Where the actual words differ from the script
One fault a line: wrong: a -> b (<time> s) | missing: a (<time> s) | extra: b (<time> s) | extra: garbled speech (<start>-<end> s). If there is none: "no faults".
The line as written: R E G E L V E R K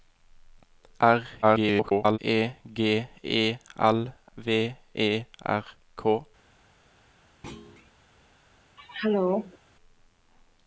extra: garbled speech (1.4-2.2 s)